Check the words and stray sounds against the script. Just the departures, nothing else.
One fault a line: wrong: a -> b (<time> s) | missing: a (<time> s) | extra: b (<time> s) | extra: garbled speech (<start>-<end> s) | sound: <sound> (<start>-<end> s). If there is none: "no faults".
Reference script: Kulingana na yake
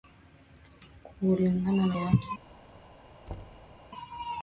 sound: thud (3.3-3.8 s)